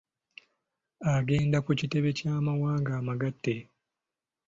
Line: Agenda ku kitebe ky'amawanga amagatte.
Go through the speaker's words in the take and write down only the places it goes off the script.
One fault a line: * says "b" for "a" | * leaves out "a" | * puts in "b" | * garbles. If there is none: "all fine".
all fine